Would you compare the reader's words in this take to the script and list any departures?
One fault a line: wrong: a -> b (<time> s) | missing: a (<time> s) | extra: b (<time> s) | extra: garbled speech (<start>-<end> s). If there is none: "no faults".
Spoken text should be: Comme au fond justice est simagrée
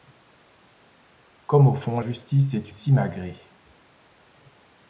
no faults